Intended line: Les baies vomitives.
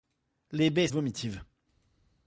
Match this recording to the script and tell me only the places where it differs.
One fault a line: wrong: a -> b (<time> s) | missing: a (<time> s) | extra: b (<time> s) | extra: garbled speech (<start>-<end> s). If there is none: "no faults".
no faults